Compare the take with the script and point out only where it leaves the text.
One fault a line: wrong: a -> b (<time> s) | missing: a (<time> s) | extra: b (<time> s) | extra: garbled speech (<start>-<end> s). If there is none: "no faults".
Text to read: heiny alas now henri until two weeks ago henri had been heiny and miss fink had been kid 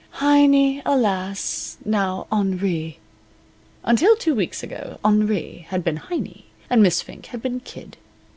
no faults